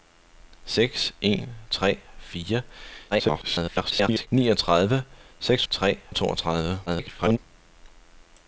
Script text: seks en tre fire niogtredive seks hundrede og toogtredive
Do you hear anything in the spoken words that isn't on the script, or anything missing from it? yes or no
yes